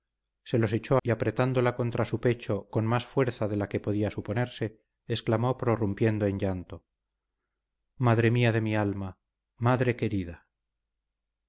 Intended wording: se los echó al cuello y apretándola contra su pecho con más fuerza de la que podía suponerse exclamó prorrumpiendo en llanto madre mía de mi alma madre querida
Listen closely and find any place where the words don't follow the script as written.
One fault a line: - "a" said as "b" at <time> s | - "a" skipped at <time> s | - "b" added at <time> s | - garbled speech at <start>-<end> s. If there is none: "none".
- "al cuello" skipped at 1.0 s